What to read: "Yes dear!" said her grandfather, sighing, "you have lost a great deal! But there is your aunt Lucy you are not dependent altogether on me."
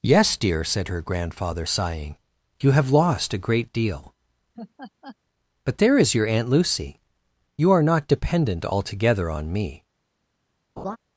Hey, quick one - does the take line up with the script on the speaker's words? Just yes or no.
yes